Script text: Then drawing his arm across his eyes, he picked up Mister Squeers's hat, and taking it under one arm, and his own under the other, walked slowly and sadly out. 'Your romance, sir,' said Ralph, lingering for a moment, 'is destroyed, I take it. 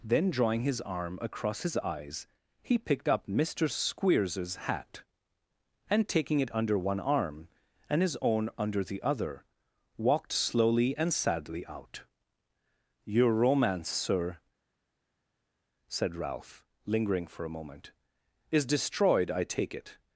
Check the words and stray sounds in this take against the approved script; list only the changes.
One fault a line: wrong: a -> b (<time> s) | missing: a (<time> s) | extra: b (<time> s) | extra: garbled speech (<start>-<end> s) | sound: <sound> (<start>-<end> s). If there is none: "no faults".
no faults